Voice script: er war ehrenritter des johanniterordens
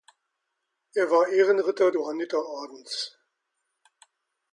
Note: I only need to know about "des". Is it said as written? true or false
false